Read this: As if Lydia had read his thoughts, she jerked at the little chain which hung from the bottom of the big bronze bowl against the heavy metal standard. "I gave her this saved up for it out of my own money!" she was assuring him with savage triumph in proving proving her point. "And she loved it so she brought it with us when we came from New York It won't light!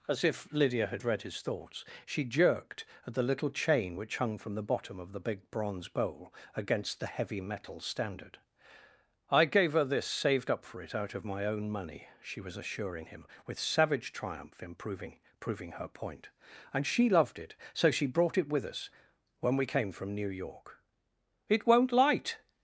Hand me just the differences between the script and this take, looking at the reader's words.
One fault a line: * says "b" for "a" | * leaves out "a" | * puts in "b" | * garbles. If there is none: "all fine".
all fine